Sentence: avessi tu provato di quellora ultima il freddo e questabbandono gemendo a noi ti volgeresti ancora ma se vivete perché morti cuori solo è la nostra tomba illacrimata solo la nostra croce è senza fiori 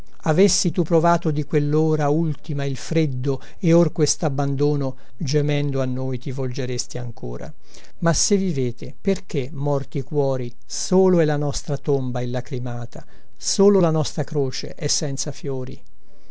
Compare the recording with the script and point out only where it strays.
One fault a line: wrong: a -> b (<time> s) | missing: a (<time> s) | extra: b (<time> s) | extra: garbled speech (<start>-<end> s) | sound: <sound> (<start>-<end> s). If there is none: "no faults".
extra: or (3.7 s)